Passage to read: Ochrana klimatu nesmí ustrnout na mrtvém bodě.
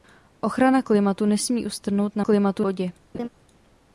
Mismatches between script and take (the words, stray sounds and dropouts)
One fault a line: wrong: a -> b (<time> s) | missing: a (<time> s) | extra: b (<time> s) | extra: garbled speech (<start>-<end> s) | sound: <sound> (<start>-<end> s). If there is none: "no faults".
wrong: mrtvém -> klimatu (2.2 s)
sound: laugh (3.1-3.3 s)